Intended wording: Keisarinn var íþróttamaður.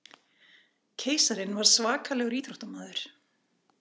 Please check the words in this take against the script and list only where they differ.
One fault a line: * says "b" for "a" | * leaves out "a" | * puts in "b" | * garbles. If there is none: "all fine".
* puts in "svakalegur"